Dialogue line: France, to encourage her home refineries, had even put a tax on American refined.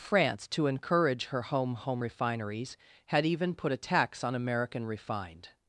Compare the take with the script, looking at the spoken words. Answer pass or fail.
fail